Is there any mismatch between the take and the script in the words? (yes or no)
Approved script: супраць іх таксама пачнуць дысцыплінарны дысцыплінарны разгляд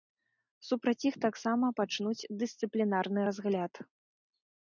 yes